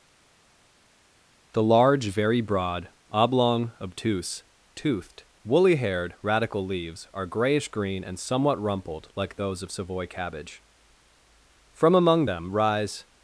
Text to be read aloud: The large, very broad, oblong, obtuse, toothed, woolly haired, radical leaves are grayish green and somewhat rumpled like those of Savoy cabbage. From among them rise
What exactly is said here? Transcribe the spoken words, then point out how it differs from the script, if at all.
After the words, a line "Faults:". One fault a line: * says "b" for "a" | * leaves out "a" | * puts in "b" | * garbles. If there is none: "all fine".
The large, very broad, oblong, obtuse, toothed, woolly haired, radical leaves are grayish green and somewhat rumpled like those of Savoy cabbage. From among them rise
Faults:
all fine